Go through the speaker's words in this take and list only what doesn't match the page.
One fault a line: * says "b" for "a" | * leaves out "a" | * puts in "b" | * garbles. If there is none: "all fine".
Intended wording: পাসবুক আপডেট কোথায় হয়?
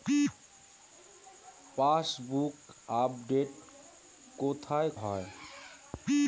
all fine